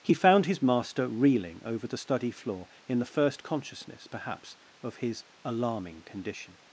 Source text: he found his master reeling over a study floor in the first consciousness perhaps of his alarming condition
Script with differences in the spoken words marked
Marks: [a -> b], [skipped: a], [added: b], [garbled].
he found his master reeling over [a -> the] study floor in the first consciousness perhaps of his alarming condition